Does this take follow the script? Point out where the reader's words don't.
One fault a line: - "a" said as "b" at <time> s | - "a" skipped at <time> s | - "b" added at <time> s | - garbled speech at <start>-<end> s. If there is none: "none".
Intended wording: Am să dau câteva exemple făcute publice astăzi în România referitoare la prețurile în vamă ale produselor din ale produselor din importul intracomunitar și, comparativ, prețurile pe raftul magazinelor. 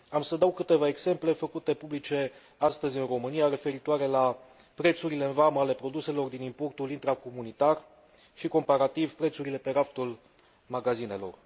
- "ale produselor din" skipped at 6.4 s